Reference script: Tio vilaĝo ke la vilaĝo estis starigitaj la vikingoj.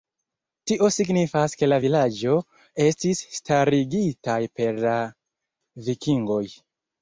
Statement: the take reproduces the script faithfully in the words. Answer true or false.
false